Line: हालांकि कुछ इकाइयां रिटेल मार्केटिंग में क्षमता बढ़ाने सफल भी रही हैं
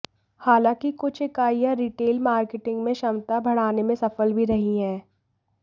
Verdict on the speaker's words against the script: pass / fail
fail